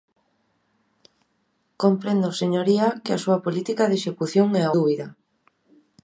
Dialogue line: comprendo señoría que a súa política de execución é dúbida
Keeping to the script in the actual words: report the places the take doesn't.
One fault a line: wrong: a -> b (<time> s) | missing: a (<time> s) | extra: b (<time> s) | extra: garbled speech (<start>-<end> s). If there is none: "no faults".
no faults